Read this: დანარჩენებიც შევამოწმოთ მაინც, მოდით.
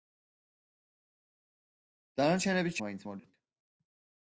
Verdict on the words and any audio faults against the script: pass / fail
fail